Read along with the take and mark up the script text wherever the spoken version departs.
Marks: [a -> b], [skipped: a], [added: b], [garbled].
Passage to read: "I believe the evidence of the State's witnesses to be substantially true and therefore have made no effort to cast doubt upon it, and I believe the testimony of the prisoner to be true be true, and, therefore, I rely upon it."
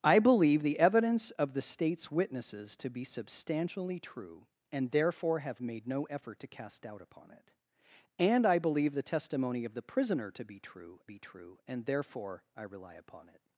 "I believe the evidence of the State's witnesses to be substantially true and therefore have made no effort to cast doubt upon it, and I believe the testimony of the prisoner to be true be true, and, therefore, I rely upon it."